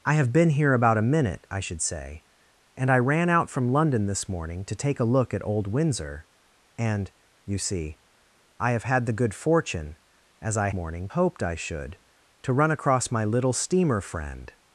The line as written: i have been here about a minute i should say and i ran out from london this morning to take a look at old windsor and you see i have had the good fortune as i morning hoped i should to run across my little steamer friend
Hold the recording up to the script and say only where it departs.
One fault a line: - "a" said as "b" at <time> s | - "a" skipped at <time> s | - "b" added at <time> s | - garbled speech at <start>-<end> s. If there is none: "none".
none